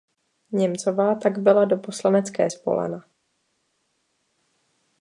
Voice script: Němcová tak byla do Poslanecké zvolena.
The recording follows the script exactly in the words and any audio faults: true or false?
true